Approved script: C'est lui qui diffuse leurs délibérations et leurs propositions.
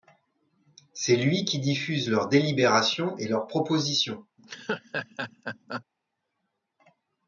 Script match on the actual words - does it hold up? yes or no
yes